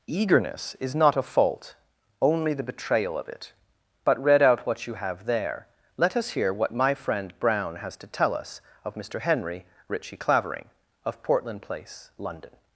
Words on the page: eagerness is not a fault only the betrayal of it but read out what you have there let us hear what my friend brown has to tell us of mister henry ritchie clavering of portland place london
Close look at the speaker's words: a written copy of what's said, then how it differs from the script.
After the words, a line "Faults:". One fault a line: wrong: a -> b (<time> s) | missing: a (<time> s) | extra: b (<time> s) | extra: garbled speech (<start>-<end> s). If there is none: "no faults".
eagerness is not a fault only the betrayal of it but read out what you have there let us hear what my friend brown has to tell us of mister henry ritchie clavering of portland place london
Faults:
no faults